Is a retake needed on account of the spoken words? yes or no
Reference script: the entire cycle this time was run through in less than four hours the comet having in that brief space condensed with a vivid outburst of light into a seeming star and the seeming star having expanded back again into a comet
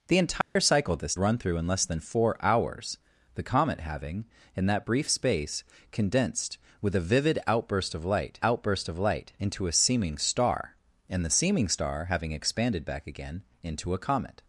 yes